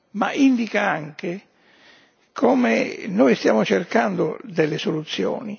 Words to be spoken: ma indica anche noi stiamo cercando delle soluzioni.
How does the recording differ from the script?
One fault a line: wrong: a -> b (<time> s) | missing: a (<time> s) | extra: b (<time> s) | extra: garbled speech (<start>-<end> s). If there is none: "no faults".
extra: come (2.3 s)